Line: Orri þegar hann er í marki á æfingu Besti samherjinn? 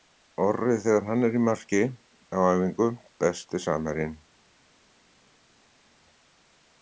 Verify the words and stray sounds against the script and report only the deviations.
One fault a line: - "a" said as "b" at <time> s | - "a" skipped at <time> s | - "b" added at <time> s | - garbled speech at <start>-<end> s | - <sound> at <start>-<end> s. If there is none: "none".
none